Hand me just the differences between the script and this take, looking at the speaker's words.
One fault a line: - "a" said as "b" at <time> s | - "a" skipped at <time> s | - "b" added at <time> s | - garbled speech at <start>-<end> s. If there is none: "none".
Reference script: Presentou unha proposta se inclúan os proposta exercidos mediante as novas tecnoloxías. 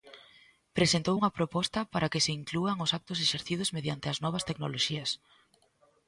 - "para que" added at 1.9 s
- "proposta" said as "actos" at 3.0 s